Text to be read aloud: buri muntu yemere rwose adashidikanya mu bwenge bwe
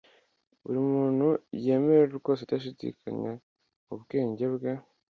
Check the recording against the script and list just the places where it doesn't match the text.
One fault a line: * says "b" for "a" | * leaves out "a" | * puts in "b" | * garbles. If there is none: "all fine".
all fine